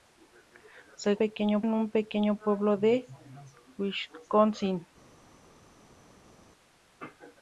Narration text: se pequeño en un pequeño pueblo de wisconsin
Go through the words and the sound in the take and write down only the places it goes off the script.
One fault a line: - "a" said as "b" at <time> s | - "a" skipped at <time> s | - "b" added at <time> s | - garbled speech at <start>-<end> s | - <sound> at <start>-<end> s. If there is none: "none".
none